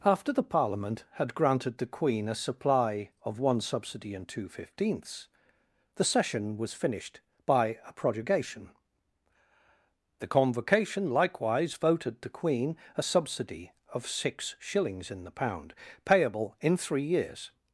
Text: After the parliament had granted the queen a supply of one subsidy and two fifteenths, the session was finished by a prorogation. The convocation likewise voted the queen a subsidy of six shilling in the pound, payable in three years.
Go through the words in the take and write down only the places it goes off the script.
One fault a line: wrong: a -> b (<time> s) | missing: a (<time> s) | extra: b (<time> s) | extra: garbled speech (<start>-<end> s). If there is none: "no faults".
wrong: shilling -> shillings (14.6 s)